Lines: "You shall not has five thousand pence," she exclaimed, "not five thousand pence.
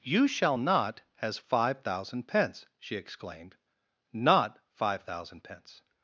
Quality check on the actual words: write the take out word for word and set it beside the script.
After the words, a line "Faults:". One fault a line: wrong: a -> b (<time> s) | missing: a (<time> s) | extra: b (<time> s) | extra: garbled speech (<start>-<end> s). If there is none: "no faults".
"You shall not has five thousand pence," she exclaimed, "not five thousand pence.
Faults:
no faults